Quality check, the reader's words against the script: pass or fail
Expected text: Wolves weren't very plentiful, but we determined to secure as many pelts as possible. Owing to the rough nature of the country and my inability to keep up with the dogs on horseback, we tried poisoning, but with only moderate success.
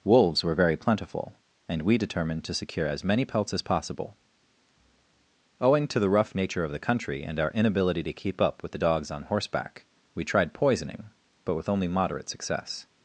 fail